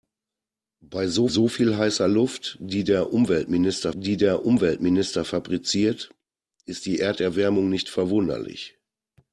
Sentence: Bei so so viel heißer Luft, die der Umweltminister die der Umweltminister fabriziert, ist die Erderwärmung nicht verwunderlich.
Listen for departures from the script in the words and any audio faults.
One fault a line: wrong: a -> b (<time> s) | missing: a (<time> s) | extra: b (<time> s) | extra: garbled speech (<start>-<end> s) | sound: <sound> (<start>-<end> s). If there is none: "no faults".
no faults